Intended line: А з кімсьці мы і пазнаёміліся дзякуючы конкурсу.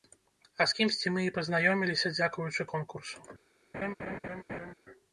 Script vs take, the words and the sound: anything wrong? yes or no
yes